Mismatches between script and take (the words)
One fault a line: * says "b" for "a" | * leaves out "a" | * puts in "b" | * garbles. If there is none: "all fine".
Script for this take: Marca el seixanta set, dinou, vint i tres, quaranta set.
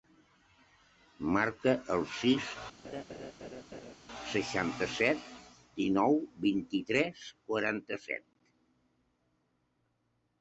* puts in "sis"